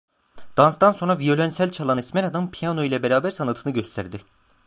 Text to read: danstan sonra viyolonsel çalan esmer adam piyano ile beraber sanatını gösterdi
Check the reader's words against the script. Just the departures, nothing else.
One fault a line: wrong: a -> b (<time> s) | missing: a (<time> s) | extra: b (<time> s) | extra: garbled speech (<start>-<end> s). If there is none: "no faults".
no faults